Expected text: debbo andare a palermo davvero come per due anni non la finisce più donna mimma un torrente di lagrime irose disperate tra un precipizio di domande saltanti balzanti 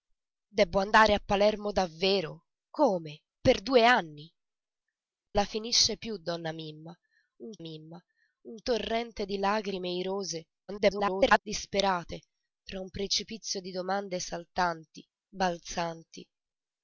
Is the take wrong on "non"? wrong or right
wrong